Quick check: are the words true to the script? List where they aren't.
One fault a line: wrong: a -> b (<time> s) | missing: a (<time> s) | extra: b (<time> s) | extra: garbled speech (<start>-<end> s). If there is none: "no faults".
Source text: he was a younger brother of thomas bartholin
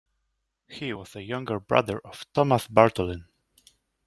no faults